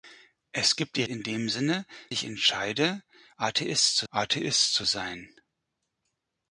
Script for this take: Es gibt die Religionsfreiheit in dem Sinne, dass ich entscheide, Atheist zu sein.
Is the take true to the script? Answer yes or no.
no